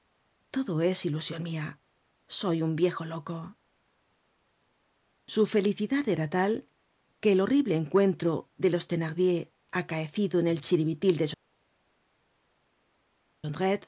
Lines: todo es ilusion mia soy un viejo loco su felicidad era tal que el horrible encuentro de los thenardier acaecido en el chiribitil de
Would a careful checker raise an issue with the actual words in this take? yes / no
no